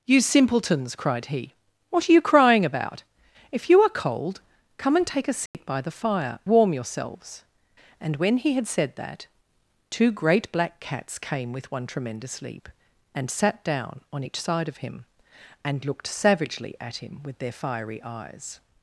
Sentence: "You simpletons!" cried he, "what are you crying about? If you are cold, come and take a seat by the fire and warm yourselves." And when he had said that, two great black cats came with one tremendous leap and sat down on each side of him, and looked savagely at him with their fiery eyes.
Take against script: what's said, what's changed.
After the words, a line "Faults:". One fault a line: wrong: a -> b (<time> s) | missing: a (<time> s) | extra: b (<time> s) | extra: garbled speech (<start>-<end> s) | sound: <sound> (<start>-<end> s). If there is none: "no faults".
"You simpletons!" cried he, "what are you crying about? If you are cold, come and take a seat by the fire warm yourselves." And when he had said that, two great black cats came with one tremendous leap and sat down on each side of him, and looked savagely at him with their fiery eyes.
Faults:
sound: dropout (5.5-5.5 s)
missing: and (6.4 s)